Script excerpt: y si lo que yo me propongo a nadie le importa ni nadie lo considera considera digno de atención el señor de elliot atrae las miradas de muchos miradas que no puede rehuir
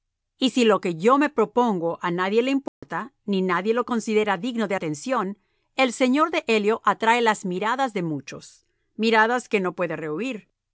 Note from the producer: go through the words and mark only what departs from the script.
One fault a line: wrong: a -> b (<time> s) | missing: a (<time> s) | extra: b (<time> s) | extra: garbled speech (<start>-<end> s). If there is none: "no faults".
missing: considera (4.4 s)